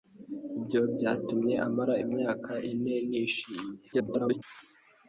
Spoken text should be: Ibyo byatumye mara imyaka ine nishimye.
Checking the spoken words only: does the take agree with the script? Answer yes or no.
no